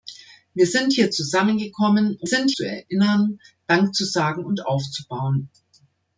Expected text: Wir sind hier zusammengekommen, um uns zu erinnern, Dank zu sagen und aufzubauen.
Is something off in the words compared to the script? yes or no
yes